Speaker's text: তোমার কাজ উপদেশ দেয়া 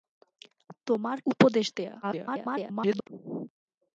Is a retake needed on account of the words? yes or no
yes